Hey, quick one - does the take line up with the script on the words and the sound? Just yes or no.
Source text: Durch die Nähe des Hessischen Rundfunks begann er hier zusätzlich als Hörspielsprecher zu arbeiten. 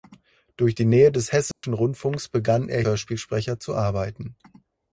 no